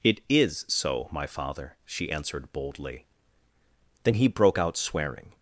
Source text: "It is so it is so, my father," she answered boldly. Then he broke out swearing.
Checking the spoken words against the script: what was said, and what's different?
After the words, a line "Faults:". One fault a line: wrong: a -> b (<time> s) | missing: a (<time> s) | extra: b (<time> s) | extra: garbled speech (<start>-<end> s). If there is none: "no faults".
"It is so, my father," she answered boldly. Then he broke out swearing.
Faults:
missing: it is so (1.1 s)